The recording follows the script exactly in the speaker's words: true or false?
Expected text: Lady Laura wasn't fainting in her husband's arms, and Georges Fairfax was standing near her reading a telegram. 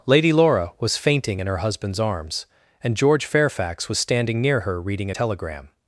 false